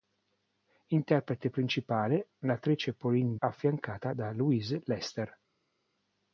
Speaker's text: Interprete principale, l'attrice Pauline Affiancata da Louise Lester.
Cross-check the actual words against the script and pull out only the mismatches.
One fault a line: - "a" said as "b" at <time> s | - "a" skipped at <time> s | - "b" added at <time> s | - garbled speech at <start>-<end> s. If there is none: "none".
none